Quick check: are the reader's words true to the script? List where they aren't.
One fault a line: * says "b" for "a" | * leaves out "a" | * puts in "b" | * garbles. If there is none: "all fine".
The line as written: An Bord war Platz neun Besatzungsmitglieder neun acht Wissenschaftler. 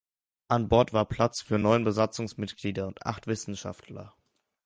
* puts in "für"
* says "und" for "neun"